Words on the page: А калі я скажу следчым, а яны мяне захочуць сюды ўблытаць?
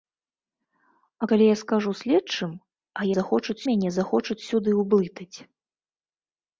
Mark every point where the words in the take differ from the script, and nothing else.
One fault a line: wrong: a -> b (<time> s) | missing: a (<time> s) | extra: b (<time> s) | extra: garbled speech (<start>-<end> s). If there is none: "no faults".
wrong: яны -> захочуць (3.2 s)